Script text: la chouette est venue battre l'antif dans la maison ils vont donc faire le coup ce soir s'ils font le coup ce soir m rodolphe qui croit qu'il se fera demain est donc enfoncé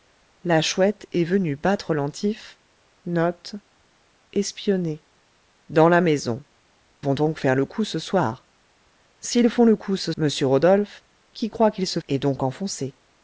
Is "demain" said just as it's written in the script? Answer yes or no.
no